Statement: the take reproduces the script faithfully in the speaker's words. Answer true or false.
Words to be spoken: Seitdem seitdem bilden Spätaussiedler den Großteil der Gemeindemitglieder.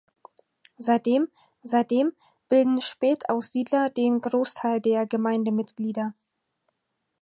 true